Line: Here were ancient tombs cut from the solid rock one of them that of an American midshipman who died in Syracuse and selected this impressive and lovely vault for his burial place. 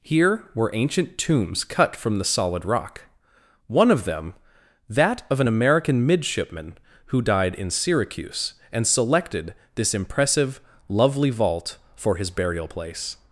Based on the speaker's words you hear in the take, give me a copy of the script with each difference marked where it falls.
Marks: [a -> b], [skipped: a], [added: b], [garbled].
Here were ancient tombs cut from the solid rock one of them that of an American midshipman who died in Syracuse and selected this impressive [skipped: and] lovely vault for his burial place.